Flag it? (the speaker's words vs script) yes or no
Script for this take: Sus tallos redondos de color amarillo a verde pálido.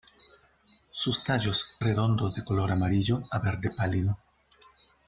no